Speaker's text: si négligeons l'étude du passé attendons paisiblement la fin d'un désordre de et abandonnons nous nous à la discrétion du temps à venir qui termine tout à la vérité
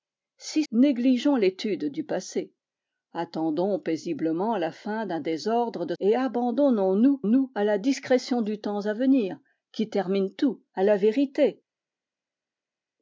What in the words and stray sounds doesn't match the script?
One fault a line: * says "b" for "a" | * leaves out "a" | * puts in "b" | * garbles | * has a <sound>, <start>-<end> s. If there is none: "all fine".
all fine